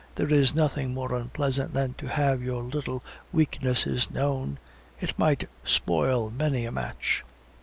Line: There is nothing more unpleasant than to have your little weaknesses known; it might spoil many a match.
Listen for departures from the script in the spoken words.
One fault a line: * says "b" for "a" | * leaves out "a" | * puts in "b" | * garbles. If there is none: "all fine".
all fine